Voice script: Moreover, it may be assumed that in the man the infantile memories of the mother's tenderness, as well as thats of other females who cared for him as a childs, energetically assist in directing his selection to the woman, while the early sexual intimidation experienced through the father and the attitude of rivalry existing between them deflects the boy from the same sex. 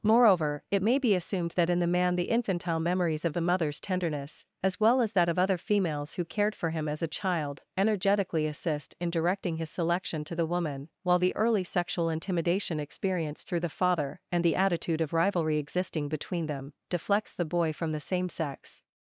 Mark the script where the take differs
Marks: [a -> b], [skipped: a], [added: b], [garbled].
Moreover, it may be assumed that in the man the infantile memories of the mother's tenderness, as well as [thats -> that] of other females who cared for him as a [childs, -> child] energetically assist in directing his selection to the woman, while the early sexual intimidation experienced through the father and the attitude of rivalry existing between them deflects the boy from the same sex.